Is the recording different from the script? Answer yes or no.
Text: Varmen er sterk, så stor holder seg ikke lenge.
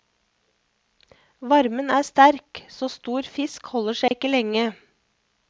yes